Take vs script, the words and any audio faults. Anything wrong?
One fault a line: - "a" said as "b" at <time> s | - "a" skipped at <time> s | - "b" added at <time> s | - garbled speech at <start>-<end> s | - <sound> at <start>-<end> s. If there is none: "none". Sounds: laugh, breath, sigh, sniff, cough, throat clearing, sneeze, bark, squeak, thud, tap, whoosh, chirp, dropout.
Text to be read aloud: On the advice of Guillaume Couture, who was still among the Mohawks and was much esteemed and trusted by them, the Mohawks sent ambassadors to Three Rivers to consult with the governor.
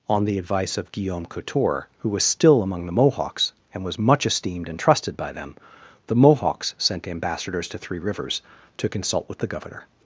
none